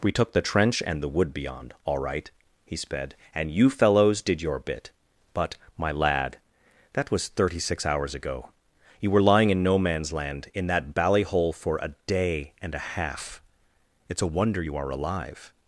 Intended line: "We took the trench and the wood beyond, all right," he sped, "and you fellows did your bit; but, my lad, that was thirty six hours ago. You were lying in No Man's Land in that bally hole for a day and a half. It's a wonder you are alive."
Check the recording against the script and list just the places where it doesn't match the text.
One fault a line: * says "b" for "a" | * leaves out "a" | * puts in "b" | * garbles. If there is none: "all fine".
all fine